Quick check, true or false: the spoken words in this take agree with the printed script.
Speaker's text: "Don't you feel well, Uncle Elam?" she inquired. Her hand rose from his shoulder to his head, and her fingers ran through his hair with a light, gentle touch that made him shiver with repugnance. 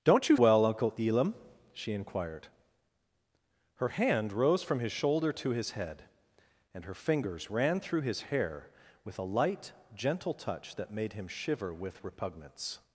false